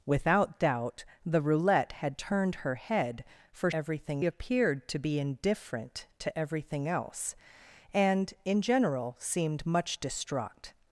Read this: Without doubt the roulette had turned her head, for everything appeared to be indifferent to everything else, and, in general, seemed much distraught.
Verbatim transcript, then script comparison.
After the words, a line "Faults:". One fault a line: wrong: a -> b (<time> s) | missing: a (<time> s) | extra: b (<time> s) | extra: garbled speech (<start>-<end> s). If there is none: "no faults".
Without doubt the roulette had turned her head, for everything appeared to be indifferent to everything else, and, in general, seemed much distraught.
Faults:
no faults